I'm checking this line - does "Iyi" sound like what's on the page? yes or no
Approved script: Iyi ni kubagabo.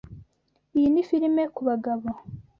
yes